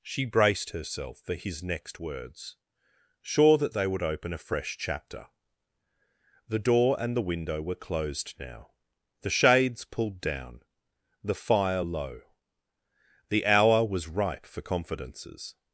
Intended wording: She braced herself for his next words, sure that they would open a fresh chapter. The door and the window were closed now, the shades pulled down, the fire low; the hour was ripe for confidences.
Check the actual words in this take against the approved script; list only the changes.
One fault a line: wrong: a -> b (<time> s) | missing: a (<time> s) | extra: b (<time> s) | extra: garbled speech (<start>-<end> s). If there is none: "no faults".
no faults